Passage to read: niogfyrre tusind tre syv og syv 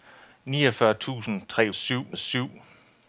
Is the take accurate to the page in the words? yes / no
yes